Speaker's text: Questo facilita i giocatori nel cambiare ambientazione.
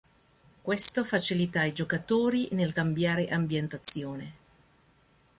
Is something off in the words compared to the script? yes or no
no